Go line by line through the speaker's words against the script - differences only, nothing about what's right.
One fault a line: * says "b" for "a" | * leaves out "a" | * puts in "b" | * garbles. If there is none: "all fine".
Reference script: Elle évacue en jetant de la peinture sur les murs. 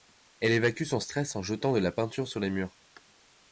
* puts in "son stress"